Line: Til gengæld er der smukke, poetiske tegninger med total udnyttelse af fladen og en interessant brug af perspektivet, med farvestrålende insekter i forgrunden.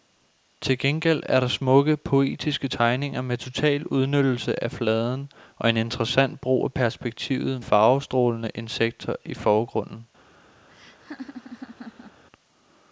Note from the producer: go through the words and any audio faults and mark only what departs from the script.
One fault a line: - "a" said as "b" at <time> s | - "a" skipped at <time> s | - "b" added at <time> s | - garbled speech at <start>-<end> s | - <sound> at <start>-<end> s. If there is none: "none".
- "med" skipped at 7.6 s
- laugh at 10.7-12.2 s